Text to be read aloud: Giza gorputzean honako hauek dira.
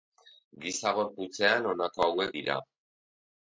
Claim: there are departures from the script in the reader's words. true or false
false